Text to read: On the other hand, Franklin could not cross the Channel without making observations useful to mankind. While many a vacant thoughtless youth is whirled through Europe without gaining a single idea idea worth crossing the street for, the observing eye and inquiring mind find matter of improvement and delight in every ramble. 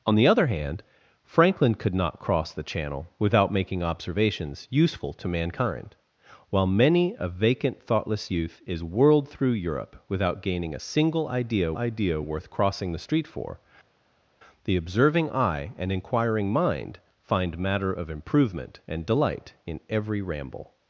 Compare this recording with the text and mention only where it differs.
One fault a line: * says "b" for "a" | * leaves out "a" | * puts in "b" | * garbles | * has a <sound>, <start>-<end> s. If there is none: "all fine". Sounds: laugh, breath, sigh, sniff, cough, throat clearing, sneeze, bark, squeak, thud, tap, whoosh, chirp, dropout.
all fine